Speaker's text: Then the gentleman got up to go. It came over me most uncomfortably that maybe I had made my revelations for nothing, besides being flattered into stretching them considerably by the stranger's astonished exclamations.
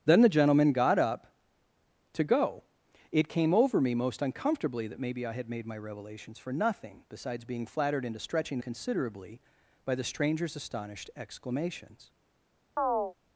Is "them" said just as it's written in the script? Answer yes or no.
no